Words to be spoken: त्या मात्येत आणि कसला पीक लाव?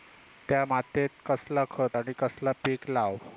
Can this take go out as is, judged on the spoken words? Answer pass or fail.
fail